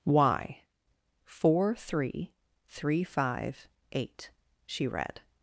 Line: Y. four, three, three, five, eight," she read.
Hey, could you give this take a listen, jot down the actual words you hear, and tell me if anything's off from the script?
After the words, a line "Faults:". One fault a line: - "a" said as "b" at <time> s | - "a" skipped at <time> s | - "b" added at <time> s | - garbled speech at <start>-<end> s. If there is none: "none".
Y. four, three, three, five, eight," she read.
Faults:
none